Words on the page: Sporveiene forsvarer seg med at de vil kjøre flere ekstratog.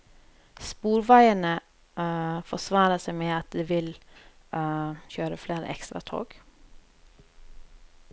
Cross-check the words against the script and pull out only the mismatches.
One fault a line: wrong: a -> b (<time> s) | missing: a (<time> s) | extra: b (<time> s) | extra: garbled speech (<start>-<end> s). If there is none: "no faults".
no faults